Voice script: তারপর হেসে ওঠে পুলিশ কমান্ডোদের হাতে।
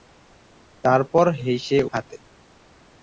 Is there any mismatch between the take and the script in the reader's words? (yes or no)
yes